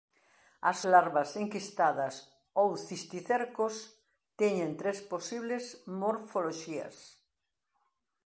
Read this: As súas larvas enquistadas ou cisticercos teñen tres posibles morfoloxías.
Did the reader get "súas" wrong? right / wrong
wrong